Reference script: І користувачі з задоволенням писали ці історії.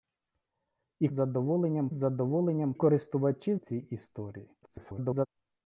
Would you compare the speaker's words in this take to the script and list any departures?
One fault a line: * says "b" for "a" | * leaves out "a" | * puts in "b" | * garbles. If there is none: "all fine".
* says "задоволенням" for "користувачі"
* says "користувачі" for "писали"
* garbles